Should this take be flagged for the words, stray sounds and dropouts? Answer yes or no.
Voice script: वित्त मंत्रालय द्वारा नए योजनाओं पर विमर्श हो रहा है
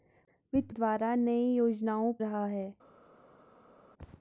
yes